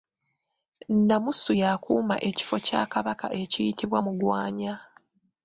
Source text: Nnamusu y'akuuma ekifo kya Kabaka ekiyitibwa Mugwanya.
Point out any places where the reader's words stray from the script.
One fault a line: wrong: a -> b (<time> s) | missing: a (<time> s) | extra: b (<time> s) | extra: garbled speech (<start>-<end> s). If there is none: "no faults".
no faults